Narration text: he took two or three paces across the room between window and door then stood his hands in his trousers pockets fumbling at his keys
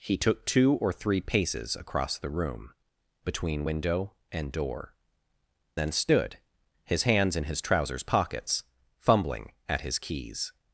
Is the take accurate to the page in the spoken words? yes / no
yes